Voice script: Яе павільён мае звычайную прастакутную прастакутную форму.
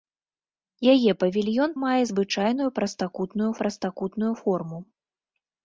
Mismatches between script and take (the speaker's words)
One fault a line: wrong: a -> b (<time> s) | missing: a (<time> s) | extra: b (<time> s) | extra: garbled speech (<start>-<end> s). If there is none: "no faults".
no faults